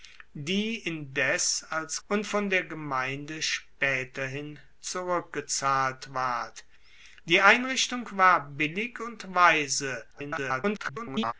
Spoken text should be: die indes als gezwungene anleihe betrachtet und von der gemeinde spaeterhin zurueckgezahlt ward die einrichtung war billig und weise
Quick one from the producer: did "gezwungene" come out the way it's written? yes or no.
no